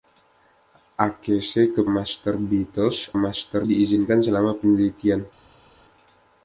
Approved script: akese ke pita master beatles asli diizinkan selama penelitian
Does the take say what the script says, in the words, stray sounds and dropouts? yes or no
no